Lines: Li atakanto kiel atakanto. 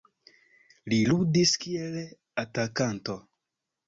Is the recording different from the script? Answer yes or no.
yes